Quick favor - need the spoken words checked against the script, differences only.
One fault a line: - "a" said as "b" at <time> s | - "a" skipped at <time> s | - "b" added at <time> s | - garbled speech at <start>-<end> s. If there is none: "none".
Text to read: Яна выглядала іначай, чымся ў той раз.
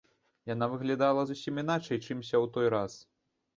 - "зусім" added at 1.3 s